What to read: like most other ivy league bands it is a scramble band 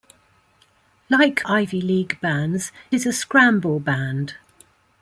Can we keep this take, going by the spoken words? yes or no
no